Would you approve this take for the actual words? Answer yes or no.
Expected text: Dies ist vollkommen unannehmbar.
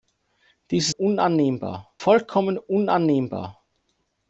no